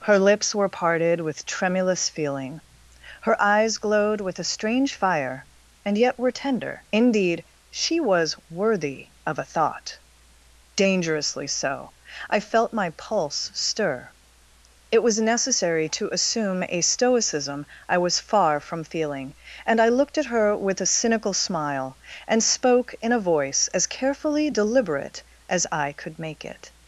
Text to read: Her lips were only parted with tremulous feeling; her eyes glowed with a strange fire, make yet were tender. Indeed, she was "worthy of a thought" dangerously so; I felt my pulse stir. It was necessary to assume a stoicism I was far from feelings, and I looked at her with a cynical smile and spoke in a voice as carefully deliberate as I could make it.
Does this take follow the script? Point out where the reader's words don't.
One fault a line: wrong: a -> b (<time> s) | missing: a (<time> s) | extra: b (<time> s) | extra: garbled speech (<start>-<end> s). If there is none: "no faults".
missing: only (0.7 s)
wrong: make -> and (5.8 s)
wrong: feelings -> feeling (18.8 s)